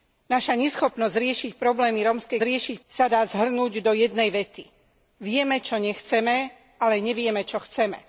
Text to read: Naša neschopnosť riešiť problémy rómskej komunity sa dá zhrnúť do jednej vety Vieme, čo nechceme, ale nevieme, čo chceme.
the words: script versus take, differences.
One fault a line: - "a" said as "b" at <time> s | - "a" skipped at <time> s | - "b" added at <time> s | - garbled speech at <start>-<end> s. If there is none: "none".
- "komunity" said as "riešiť" at 2.4 s